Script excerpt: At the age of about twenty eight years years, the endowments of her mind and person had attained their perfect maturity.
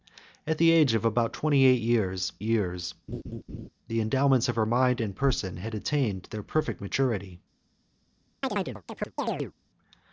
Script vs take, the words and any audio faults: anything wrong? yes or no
yes